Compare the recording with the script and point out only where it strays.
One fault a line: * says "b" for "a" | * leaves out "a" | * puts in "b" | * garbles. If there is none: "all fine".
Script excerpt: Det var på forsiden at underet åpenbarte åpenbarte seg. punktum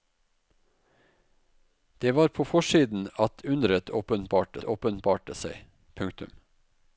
all fine